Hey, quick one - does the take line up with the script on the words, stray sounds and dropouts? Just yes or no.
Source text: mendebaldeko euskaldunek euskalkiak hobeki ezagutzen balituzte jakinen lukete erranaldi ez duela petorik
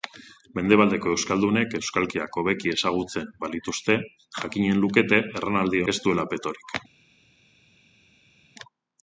yes